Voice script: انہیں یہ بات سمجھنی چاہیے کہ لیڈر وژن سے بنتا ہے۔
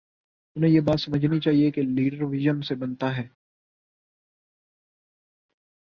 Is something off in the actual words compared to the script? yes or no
no